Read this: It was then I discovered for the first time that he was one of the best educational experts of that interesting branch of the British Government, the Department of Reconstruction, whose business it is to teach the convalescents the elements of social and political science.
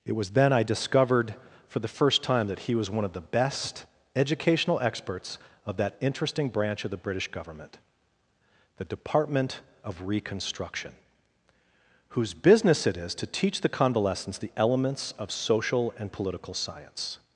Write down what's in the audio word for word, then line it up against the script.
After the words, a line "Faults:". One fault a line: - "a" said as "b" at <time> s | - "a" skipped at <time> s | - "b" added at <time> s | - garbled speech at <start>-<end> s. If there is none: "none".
It was then I discovered for the first time that he was one of the best educational experts of that interesting branch of the British Government, the Department of Reconstruction, whose business it is to teach the convalescents the elements of social and political science.
Faults:
none